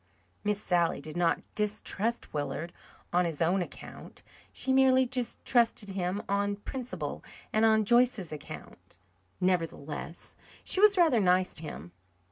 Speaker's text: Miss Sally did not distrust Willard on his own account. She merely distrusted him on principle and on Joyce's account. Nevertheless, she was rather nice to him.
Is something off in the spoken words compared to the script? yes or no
no